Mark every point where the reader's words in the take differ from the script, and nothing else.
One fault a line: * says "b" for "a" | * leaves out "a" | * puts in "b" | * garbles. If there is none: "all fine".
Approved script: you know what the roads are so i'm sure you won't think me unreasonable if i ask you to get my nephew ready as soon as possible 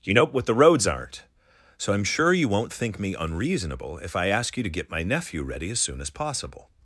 * says "aren't" for "are"